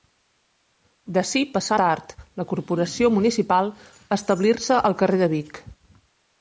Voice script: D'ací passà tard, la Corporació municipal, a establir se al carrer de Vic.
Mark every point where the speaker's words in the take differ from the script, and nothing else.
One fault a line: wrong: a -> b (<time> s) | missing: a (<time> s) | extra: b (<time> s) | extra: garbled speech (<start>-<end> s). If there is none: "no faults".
no faults